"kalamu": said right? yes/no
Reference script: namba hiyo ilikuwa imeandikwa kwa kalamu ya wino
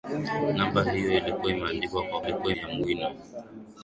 no